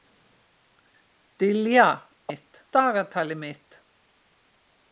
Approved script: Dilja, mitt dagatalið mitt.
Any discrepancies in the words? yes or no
no